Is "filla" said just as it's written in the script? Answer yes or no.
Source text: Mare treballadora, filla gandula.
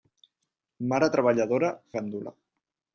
no